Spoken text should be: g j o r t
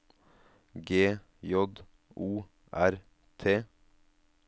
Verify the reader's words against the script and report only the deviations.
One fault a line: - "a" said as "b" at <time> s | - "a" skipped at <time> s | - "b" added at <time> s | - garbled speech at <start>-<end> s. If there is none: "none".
none